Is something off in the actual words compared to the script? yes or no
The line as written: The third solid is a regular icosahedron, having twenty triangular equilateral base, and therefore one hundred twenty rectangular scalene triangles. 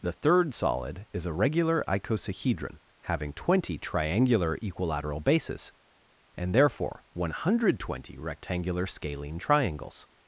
yes